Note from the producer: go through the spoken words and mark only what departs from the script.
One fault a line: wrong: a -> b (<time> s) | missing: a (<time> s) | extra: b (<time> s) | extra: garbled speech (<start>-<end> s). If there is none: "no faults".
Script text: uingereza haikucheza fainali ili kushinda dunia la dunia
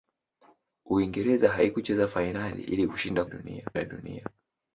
no faults